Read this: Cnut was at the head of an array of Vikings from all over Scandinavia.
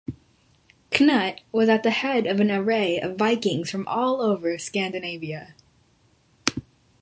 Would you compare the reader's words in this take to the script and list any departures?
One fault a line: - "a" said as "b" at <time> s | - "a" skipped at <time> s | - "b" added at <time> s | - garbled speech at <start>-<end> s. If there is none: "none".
none